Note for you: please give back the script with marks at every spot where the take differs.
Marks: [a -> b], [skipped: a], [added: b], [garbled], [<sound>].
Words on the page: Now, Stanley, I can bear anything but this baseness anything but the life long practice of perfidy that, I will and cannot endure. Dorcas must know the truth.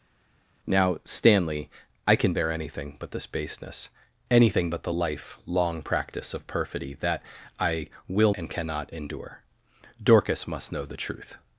Now, Stanley, I can bear anything but this baseness anything but the life long practice of perfidy that, I will and cannot endure. Dorcas must know the truth.